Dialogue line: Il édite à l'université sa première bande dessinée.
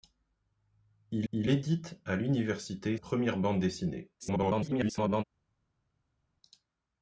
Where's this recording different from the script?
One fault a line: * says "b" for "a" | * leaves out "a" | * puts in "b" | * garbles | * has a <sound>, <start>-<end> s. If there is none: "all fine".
* puts in "il"
* leaves out "sa"
* garbles